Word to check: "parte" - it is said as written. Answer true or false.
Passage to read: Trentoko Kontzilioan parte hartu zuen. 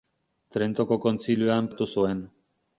false